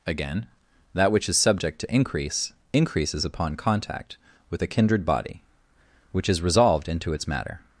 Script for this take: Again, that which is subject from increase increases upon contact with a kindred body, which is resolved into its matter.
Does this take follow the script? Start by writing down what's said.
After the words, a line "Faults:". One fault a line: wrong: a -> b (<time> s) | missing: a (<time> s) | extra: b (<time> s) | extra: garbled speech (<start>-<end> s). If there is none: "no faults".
Again, that which is subject to increase increases upon contact with a kindred body, which is resolved into its matter.
Faults:
wrong: from -> to (1.8 s)